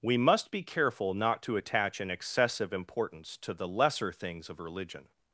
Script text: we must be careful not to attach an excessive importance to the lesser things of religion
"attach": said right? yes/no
yes